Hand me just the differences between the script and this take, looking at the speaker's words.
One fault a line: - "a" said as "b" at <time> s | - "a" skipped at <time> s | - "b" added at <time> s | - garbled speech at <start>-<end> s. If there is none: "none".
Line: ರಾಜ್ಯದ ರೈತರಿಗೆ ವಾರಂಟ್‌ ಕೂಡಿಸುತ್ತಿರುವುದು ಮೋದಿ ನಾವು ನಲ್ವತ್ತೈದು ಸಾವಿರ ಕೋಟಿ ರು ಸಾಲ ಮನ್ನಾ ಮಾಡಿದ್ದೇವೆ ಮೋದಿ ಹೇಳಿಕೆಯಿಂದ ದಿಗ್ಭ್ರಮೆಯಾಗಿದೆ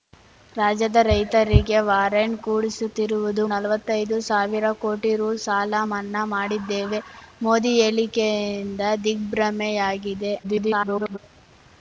- "ಮೋದಿ ನಾವು" skipped at 3.4 s
- garbled speech at 10.4-11.2 s